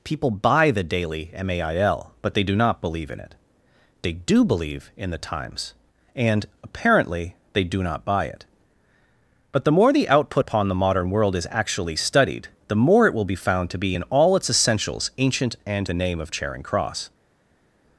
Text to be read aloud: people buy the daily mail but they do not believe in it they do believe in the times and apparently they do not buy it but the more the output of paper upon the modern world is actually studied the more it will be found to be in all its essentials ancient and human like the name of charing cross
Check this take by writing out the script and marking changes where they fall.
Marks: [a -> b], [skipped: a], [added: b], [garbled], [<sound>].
people buy the daily mail but they do not believe in it they do believe in the times and apparently they do not buy it but the more the output [skipped: of paper] upon the modern world is actually studied the more it will be found to be in all its essentials ancient and [skipped: human like] the name of charing cross